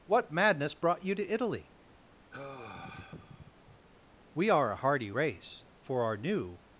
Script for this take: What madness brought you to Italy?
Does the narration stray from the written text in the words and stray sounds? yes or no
yes